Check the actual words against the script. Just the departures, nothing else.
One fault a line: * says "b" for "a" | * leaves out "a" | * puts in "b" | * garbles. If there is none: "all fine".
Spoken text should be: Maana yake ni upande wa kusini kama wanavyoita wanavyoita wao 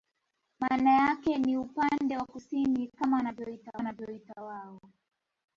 all fine